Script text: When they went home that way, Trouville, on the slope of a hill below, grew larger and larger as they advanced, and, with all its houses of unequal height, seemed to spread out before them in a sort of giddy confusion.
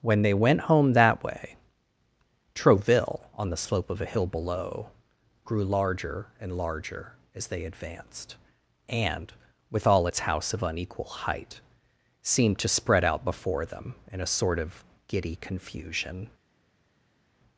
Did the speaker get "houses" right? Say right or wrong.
wrong